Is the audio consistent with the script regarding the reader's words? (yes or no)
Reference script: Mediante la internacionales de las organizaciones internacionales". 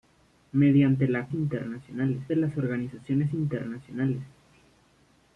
yes